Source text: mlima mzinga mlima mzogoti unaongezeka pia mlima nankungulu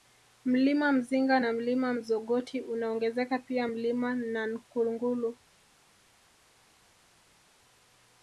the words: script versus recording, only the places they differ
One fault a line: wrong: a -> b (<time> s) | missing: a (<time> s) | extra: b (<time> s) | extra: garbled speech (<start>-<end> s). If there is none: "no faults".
extra: na (1.4 s)